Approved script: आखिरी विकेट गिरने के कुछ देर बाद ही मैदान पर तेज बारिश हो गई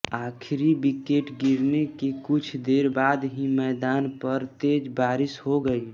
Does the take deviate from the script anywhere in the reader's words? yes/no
no